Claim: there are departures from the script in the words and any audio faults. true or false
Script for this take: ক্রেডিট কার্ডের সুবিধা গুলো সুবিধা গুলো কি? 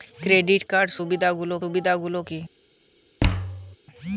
true